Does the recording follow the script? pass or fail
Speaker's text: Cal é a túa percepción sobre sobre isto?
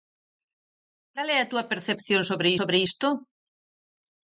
pass